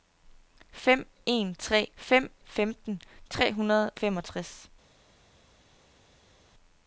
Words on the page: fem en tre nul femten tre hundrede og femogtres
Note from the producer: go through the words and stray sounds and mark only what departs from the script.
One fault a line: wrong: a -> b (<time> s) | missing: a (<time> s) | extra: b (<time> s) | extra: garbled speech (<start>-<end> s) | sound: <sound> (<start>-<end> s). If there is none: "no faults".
wrong: nul -> fem (2.0 s)
missing: og (3.9 s)